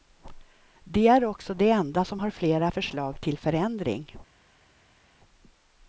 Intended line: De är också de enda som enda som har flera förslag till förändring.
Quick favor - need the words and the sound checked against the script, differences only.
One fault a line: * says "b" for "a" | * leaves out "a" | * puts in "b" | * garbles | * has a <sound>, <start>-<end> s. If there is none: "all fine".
* leaves out "enda som"